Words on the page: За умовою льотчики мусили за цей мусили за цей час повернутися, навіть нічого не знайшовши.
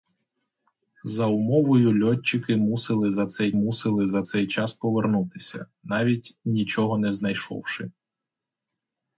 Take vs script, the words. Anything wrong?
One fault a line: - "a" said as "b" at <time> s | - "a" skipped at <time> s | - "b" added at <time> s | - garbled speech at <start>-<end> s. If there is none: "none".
none